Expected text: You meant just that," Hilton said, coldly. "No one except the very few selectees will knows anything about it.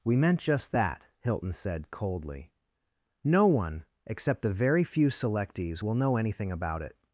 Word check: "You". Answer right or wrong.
wrong